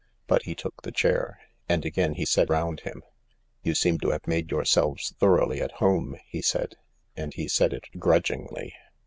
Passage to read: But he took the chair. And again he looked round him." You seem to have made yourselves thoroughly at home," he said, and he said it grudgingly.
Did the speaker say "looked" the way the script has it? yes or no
no